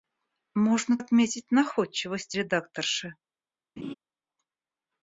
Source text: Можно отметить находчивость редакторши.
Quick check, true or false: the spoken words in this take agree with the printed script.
true